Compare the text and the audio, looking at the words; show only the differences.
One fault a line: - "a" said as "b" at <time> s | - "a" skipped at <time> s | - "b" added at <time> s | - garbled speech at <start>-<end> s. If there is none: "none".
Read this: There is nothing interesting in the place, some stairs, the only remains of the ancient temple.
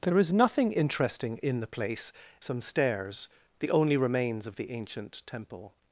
none